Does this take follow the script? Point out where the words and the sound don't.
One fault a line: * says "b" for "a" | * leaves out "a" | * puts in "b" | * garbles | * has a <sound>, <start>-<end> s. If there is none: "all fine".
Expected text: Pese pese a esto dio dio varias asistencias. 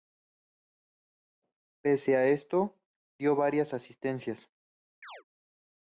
* leaves out "pese"
* leaves out "dio"
* has a chirp, 5.0-5.2 s